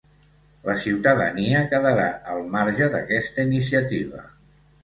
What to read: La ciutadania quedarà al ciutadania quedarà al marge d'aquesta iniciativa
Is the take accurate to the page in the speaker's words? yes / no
no